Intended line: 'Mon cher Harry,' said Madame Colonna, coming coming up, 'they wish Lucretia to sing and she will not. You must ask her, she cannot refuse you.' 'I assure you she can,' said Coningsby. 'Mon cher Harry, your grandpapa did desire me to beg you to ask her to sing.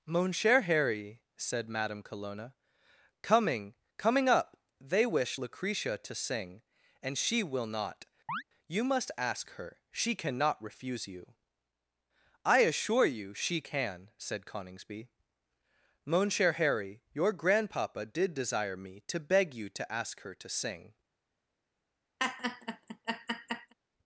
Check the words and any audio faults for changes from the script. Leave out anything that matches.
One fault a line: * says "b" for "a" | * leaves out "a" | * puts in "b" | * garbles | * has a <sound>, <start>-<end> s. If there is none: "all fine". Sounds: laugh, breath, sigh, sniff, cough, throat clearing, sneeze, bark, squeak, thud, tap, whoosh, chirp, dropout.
* has a chirp, 8.3-8.4 s
* has a laugh, 22.2-23.7 s